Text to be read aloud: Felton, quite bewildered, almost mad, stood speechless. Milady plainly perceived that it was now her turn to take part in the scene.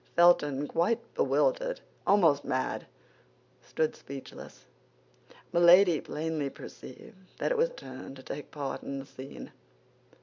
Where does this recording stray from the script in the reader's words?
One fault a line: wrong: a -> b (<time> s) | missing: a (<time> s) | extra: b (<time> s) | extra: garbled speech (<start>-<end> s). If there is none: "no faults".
missing: now her (7.7 s)